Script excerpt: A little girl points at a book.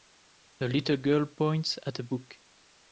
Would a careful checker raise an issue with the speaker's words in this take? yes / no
no